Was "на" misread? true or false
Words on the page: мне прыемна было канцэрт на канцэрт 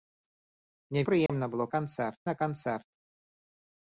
false